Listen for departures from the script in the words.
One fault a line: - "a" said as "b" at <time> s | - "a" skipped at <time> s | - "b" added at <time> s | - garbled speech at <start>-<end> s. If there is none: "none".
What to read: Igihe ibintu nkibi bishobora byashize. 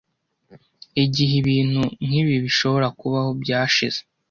- "kubaho" added at 3.0 s